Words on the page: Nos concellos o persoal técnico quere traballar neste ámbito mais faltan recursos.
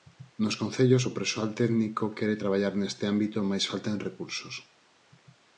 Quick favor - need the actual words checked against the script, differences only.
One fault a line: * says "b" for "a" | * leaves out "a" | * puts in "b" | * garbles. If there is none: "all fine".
all fine